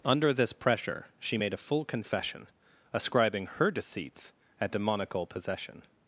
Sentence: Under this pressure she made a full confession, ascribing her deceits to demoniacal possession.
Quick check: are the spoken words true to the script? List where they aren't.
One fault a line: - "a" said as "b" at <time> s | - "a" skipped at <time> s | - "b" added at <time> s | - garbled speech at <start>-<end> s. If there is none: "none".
- "to" said as "at" at 4.6 s